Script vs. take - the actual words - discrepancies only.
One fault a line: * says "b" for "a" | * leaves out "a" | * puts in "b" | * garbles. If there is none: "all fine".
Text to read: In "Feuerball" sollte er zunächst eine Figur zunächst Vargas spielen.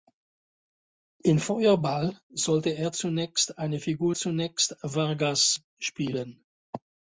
all fine